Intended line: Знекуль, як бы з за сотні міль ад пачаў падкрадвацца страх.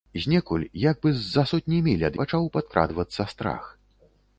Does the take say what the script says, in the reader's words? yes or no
yes